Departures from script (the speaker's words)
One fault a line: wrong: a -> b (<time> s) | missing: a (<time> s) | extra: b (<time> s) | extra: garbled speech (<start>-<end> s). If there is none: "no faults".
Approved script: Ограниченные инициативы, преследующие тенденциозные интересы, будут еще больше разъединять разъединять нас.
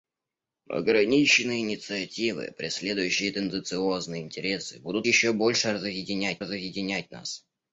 no faults